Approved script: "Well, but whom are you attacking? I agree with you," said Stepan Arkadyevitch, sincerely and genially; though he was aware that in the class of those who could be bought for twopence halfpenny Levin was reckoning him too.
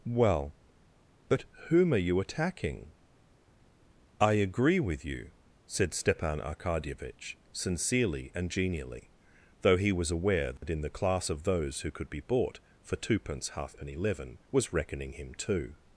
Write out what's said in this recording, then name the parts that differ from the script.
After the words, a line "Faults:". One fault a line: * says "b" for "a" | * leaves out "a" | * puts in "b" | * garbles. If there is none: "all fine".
"Well, but whom are you attacking? I agree with you," said Stepan Arkadyevitch, sincerely and genially; though he was aware that in the class of those who could be bought for twopence halfpenny Levin was reckoning him too.
Faults:
all fine